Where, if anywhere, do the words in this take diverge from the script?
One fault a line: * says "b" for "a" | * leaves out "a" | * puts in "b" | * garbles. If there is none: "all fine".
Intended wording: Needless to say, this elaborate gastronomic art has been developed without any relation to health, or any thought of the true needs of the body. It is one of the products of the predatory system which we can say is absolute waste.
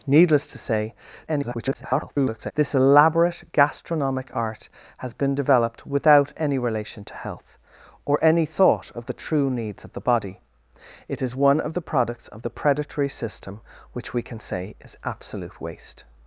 * garbles